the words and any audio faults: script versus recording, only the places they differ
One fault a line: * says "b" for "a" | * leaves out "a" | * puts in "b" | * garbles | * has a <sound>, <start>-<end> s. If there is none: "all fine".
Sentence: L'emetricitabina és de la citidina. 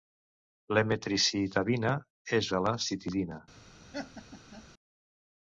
* has a laugh, 3.9-4.7 s